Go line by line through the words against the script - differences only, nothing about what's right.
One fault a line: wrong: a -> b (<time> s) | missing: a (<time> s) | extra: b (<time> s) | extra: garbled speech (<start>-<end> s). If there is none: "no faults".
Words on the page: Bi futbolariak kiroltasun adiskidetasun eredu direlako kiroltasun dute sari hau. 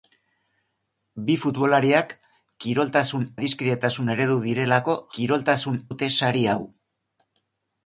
no faults